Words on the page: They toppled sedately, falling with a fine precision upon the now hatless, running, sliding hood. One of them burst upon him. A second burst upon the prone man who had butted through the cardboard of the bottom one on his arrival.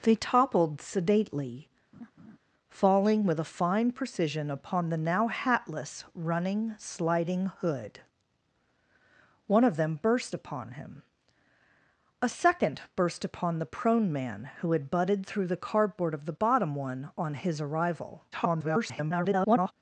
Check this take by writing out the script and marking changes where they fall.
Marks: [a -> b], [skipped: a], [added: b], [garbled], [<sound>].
They toppled sedately, [laugh] falling with a fine precision upon the now hatless, running, sliding hood. One of them burst upon him. A second burst upon the prone man who had butted through the cardboard of the bottom one on his arrival. [garbled]